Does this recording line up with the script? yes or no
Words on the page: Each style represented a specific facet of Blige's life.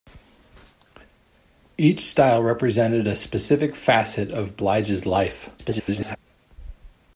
no